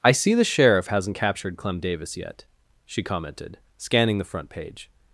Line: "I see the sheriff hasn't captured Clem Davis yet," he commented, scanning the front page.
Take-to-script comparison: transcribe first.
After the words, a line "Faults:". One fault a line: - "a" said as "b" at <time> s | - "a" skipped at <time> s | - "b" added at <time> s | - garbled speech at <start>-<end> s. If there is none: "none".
"I see the sheriff hasn't captured Clem Davis yet," she commented, scanning the front page.
Faults:
- "he" said as "she" at 2.9 s